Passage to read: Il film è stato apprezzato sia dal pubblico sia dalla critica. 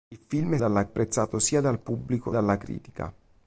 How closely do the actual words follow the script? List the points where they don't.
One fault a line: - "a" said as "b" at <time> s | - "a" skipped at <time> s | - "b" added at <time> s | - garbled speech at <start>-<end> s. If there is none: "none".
- "stato" said as "dalla" at 0.6 s
- "sia" skipped at 2.3 s